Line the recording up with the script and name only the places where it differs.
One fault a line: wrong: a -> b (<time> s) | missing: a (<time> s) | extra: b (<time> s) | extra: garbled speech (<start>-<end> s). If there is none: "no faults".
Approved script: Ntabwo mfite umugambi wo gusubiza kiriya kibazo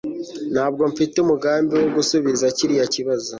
no faults